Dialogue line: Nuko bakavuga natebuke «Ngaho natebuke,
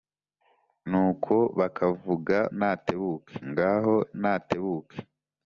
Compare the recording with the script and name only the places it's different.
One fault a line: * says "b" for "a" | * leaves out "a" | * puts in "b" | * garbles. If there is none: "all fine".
all fine